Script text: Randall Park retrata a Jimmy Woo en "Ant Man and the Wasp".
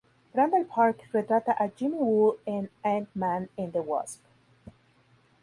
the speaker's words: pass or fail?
pass